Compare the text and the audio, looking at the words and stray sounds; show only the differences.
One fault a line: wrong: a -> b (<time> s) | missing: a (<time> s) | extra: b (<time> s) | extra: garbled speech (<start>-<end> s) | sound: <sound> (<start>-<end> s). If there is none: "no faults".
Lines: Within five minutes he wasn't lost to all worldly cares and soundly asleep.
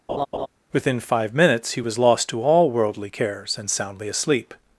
sound: laugh (0.1-0.5 s)
wrong: wasn't -> was (1.8 s)